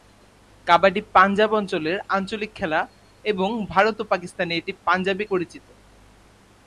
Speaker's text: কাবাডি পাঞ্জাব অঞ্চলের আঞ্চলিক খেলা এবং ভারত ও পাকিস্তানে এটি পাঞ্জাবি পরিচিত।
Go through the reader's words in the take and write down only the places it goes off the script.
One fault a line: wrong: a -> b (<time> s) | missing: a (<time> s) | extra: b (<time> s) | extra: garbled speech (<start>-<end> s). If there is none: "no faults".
no faults